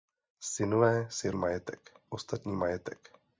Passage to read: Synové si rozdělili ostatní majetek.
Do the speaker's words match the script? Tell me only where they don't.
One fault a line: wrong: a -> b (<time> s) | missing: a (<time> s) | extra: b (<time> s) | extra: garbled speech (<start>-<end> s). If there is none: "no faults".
wrong: rozdělili -> majetek (1.3 s)